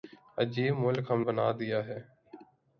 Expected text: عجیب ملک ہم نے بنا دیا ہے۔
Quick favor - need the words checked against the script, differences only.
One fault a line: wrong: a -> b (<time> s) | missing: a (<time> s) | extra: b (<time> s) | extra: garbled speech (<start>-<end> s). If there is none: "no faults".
missing: نے (1.2 s)